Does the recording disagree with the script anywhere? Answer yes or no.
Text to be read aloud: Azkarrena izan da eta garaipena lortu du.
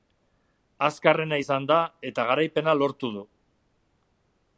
no